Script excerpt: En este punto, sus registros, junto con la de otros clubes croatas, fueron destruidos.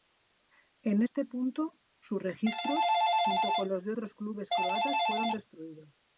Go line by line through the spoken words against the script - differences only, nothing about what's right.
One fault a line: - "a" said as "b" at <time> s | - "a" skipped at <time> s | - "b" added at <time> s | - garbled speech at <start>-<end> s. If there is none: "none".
- "la" said as "los" at 3.7 s